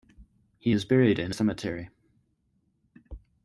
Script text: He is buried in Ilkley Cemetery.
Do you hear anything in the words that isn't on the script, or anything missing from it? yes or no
yes